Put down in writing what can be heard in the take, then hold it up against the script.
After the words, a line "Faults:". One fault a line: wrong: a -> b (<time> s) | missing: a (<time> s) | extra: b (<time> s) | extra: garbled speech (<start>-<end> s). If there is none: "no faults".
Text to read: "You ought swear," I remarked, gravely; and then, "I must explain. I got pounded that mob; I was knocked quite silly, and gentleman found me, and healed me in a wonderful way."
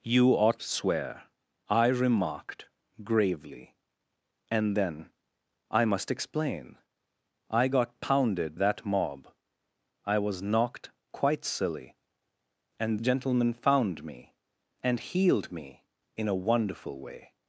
"You ought swear," I remarked, gravely; and then, "I must explain. I got pounded that mob; I was knocked quite silly, and gentleman found me, and healed me in a wonderful way."
Faults:
no faults